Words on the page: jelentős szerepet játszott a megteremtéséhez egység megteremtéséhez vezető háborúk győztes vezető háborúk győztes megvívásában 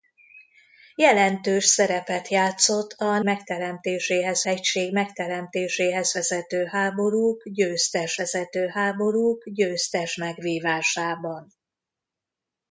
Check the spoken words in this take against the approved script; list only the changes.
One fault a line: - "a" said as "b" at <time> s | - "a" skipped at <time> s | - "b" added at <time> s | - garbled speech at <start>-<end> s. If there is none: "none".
none